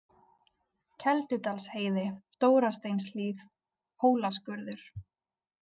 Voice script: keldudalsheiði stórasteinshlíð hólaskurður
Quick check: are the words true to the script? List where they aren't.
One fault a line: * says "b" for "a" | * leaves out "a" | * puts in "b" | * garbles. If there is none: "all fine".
all fine